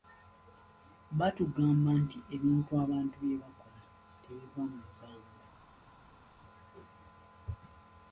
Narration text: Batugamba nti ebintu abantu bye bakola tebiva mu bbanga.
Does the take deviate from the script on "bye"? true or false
false